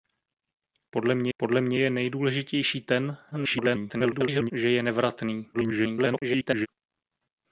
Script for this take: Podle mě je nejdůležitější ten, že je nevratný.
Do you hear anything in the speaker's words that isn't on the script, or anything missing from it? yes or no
yes